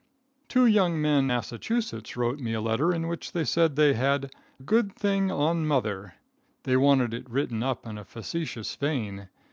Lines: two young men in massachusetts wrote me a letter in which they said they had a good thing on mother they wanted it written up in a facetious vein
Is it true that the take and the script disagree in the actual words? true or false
true